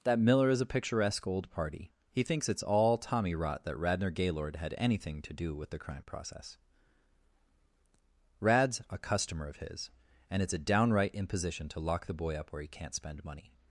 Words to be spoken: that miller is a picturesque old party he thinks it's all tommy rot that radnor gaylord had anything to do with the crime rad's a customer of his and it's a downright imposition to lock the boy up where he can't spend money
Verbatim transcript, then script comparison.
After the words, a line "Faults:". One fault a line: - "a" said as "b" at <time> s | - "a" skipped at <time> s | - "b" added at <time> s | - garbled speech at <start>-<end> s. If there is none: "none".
that miller is a picturesque old party he thinks it's all tommy rot that radnor gaylord had anything to do with the crime process rad's a customer of his and it's a downright imposition to lock the boy up where he can't spend money
Faults:
- "process" added at 6.0 s